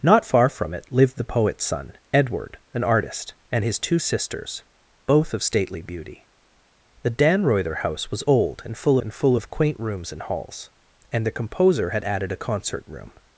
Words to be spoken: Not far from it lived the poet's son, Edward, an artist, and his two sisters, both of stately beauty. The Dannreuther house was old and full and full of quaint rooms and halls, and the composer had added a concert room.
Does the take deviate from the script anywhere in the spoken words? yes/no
no